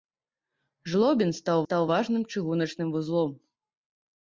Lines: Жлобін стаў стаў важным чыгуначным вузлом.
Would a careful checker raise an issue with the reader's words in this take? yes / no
no